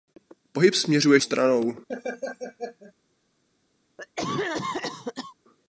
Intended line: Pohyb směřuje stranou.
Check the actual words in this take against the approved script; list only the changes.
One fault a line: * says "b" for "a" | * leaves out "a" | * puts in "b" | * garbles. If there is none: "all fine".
all fine